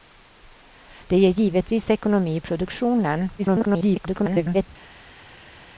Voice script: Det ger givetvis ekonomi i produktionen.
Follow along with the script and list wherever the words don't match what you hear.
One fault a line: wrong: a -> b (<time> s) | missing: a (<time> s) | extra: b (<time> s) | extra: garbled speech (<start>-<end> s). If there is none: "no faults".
extra: garbled speech (3.4-4.7 s)